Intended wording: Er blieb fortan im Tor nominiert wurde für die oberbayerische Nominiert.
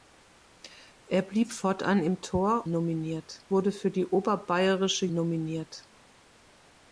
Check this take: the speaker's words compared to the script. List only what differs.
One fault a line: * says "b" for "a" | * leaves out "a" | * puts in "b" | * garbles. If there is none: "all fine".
all fine